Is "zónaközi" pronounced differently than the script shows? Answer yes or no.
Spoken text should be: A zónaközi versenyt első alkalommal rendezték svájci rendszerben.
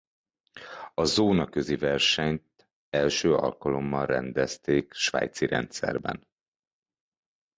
no